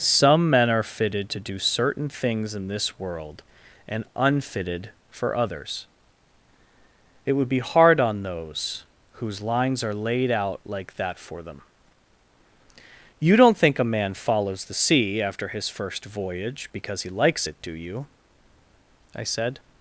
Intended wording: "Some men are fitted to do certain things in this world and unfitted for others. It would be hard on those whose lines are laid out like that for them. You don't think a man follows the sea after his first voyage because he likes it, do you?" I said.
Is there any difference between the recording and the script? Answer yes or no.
no